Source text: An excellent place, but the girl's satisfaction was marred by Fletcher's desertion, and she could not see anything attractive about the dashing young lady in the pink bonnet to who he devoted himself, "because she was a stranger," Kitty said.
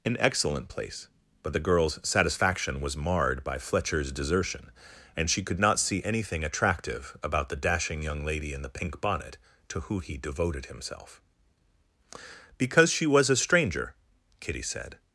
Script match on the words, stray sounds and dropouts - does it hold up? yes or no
yes